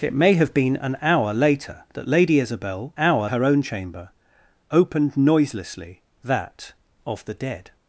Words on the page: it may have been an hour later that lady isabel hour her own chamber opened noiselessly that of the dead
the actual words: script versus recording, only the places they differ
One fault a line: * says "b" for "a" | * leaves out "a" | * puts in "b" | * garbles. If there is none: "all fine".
all fine